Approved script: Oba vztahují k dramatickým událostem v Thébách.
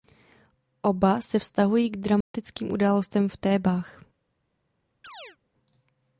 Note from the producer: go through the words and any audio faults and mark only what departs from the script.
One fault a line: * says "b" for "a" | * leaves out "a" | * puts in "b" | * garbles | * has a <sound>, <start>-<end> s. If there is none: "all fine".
* puts in "se"
* has a dropout, 2.2-2.3 s
* has a chirp, 5.0-5.4 s